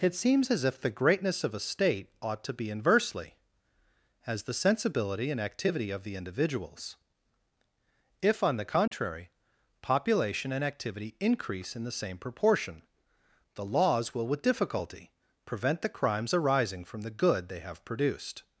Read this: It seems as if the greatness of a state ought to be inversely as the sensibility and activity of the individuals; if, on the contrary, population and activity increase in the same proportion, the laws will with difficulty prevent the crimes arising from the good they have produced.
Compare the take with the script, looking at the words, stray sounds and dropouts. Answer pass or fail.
fail